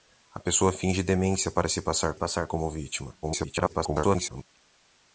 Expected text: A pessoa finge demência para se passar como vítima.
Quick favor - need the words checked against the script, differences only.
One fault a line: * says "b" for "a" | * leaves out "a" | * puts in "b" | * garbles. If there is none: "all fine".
* puts in "passar"
* garbles